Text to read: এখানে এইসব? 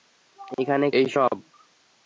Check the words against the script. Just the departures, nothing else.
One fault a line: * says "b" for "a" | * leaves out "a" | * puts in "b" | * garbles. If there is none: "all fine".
all fine